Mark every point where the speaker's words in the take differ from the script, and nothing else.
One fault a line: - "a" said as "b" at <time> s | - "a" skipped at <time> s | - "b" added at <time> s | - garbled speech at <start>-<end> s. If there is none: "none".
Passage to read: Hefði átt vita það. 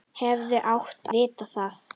none